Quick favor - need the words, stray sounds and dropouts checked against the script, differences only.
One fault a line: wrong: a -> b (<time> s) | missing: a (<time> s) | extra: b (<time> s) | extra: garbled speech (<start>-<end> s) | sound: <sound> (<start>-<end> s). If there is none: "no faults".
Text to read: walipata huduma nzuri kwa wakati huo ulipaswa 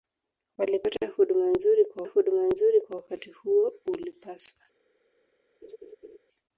extra: huduma nzuri kwa (2.0 s)
sound: laugh (5.6-6.2 s)